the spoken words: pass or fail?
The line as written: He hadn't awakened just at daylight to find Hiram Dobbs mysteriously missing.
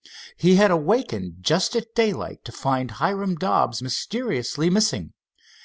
fail